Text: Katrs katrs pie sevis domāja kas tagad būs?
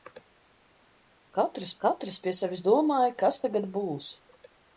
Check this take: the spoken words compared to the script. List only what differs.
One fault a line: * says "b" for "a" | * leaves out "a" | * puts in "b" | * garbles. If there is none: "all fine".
all fine